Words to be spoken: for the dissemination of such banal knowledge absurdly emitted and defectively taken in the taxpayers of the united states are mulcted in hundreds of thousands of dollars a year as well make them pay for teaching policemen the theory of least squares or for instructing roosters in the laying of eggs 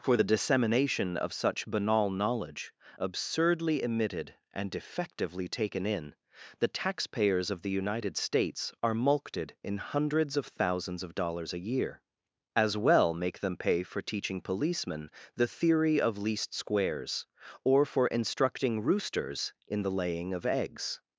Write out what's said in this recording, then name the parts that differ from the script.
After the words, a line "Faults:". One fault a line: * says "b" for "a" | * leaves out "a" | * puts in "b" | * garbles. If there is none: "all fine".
for the dissemination of such banal knowledge absurdly emitted and defectively taken in the taxpayers of the united states are mulcted in hundreds of thousands of dollars a year as well make them pay for teaching policemen the theory of least squares or for instructing roosters in the laying of eggs
Faults:
all fine